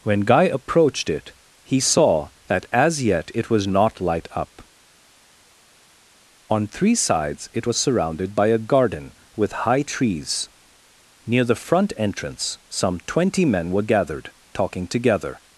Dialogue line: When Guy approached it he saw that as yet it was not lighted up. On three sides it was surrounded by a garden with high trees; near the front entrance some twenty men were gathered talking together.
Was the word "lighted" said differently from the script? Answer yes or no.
yes